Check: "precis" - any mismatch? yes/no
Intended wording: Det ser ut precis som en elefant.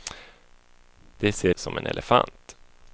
yes